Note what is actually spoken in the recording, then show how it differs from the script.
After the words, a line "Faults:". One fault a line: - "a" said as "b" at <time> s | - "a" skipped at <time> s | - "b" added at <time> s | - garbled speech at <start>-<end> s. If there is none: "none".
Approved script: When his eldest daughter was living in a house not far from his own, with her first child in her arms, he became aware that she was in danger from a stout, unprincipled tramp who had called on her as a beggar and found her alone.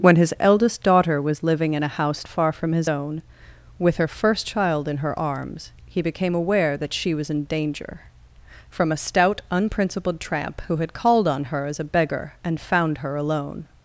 When his eldest daughter was living in a house far from his own, with her first child in her arms, he became aware that she was in danger from a stout, unprincipled tramp who had called on her as a beggar and found her alone.
Faults:
- "not" skipped at 2.2 s